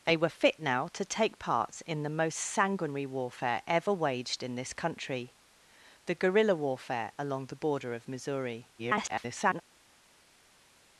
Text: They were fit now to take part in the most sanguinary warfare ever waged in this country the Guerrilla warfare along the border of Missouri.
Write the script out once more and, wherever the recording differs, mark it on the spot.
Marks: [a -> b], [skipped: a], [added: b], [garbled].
They were fit now to take part in the most sanguinary warfare ever waged in this country the Guerrilla warfare along the border of Missouri. [garbled]